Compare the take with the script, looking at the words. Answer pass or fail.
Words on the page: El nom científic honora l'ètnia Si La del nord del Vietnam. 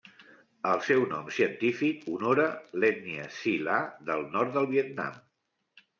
fail